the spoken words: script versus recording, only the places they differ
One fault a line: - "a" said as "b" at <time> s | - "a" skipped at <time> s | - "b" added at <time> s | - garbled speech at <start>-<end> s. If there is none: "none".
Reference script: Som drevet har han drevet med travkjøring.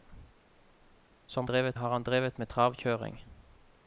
none